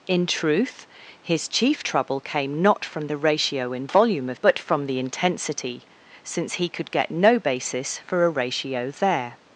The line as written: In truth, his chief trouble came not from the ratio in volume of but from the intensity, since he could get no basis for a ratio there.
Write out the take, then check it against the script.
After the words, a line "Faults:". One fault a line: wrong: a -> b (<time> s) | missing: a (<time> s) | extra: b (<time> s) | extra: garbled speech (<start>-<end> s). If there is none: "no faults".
In truth, his chief trouble came not from the ratio in volume of but from the intensity, since he could get no basis for a ratio there.
Faults:
no faults